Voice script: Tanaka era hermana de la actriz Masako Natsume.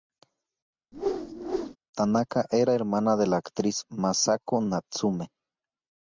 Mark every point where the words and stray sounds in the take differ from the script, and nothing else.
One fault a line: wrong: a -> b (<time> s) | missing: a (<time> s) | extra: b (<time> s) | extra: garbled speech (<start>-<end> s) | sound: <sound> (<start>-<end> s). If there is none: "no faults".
sound: whoosh (0.9-1.8 s)